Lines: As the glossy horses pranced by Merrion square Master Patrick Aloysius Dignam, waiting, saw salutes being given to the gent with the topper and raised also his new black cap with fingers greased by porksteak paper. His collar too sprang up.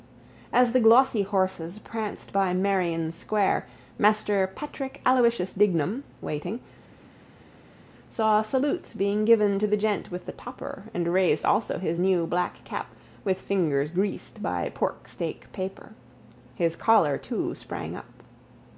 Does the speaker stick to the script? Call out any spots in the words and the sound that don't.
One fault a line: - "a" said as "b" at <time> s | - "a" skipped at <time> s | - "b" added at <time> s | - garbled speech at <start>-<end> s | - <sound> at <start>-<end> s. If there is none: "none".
none